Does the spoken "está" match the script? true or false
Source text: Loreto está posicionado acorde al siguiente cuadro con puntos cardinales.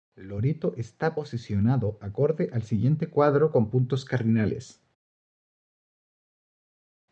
true